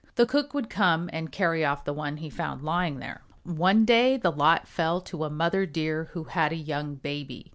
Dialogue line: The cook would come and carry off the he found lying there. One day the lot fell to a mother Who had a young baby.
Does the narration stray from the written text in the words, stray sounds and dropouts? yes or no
yes